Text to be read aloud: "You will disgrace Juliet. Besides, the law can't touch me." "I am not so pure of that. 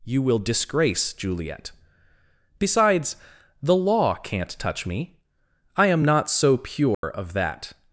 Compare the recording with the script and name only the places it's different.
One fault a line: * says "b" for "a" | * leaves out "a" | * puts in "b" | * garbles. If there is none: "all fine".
all fine